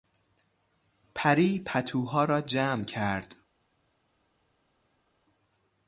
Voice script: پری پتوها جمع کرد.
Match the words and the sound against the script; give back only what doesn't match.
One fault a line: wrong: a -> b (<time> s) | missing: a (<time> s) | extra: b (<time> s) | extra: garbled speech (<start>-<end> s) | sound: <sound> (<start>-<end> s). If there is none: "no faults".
extra: را (2.2 s)